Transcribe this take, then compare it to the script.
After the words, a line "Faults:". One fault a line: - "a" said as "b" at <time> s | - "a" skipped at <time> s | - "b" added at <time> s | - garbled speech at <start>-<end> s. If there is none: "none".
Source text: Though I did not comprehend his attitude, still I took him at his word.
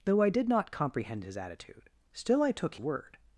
Though I did not comprehend his attitude, still I took word.
Faults:
- "him at his" skipped at 2.8 s